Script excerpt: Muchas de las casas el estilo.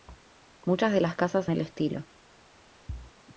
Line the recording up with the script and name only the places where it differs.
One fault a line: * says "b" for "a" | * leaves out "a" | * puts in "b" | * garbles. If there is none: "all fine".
all fine